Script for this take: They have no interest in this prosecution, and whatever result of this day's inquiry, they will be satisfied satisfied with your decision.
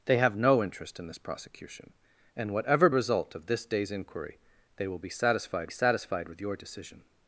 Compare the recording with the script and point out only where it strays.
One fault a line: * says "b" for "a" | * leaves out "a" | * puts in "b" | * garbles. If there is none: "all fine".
all fine